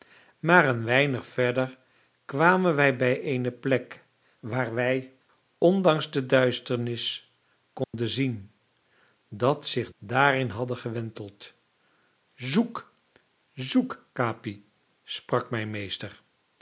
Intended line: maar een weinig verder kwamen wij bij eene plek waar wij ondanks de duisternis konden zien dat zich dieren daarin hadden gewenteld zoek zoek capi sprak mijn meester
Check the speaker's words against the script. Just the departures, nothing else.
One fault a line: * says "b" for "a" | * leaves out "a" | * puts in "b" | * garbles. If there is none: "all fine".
* leaves out "dieren"